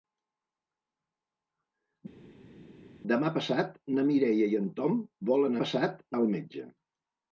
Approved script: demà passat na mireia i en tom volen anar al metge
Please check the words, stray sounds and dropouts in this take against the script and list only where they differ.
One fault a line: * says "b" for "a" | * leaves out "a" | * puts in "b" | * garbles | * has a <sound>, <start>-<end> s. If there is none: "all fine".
* says "passat" for "anar"